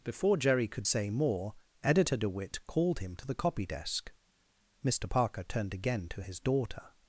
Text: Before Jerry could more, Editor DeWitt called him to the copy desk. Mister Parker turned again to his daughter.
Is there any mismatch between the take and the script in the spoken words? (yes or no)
yes